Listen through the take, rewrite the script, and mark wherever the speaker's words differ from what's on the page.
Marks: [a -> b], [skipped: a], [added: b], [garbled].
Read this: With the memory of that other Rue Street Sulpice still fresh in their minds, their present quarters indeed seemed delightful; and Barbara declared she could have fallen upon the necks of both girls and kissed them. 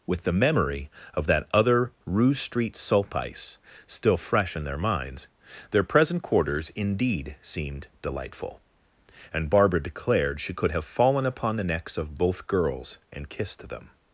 With the memory of that other Rue Street Sulpice still fresh in their minds, their present quarters indeed seemed delightful; and Barbara declared she could have fallen upon the necks of both girls and kissed them.